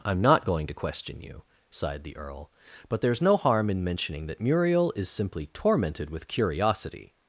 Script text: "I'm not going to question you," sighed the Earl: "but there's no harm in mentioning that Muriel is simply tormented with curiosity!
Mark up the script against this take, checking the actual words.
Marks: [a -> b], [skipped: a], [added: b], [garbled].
"I'm not going to question you," sighed the Earl: "but there's no harm in mentioning that Muriel is simply tormented with curiosity!